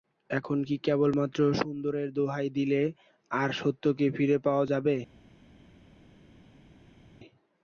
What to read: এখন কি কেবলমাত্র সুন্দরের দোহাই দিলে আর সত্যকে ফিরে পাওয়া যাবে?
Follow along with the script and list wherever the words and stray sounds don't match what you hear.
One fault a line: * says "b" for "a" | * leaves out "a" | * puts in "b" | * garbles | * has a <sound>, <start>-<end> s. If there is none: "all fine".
all fine